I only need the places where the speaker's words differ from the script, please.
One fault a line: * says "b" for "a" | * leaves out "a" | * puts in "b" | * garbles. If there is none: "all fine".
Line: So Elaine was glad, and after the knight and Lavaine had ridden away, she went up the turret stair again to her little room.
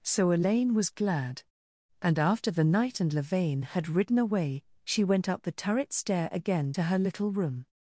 all fine